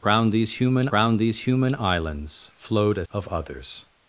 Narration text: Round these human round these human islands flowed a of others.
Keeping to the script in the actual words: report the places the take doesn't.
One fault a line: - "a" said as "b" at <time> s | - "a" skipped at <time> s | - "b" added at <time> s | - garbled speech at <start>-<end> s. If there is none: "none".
none